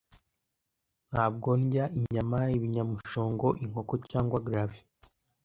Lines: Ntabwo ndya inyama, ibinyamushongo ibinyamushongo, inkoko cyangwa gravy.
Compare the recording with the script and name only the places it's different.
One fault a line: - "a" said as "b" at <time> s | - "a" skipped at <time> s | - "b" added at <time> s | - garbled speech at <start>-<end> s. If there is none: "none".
- "ibinyamushongo" skipped at 3.5 s